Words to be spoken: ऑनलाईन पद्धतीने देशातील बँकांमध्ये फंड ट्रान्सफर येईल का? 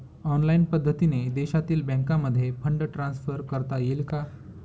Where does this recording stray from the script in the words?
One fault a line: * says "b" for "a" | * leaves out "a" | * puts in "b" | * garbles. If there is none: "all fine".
* puts in "करता"